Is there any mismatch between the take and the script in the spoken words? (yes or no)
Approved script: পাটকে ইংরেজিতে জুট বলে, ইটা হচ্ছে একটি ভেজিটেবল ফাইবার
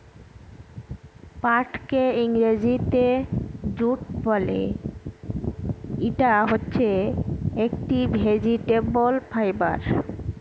no